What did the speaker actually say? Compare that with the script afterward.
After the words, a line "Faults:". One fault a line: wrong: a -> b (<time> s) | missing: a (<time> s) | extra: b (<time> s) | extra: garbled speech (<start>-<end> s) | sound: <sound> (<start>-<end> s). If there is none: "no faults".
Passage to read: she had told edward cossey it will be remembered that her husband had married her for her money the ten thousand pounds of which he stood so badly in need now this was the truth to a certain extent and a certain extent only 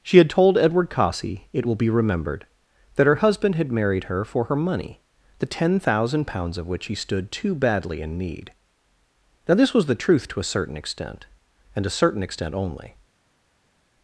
she had told edward cossey it will be remembered that her husband had married her for her money the ten thousand pounds of which he stood too badly in need now this was the truth to a certain extent and a certain extent only
Faults:
wrong: so -> too (7.3 s)